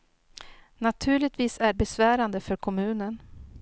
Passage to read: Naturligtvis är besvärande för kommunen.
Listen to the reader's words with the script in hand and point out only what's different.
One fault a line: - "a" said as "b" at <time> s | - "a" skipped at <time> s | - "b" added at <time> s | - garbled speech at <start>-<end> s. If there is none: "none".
none